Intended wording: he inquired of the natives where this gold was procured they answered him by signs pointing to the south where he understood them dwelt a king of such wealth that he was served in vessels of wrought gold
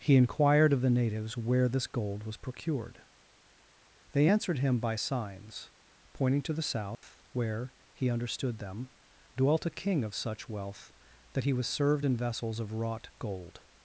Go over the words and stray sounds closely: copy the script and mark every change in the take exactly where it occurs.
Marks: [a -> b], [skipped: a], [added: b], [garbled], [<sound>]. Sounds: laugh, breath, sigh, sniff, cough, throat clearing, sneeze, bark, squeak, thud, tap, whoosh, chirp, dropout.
he inquired of the natives where this gold was procured they answered him by signs pointing to the south [dropout] where he understood them dwelt a king of such wealth that he was served in vessels of wrought gold